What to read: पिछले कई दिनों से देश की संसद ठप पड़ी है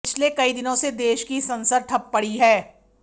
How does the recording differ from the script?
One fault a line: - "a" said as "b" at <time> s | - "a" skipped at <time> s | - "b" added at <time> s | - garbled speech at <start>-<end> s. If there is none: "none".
none